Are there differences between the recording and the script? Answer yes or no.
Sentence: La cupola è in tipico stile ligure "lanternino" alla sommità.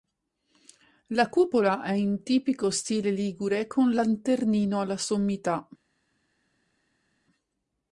yes